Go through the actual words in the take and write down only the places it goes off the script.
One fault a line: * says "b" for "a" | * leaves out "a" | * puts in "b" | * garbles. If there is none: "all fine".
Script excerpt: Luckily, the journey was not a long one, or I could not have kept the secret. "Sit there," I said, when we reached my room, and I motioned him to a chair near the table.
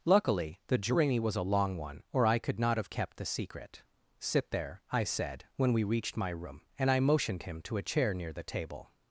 * leaves out "not"